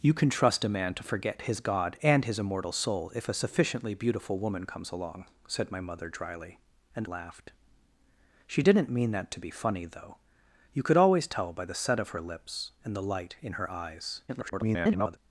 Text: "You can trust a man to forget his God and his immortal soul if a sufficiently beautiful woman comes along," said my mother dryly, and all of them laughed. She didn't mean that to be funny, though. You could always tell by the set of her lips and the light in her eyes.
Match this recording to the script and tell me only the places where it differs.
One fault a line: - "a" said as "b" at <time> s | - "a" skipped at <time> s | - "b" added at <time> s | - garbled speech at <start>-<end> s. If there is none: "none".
- "all of them" skipped at 7.0 s
- garbled speech at 14.3-15.2 s